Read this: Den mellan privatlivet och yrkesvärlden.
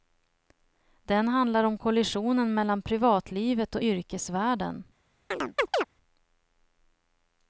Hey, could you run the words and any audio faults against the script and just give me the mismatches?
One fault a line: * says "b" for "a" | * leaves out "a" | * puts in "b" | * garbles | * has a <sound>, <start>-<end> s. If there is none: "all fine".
* puts in "handlar om kollisionen"
* has a chirp, 5.3-5.8 s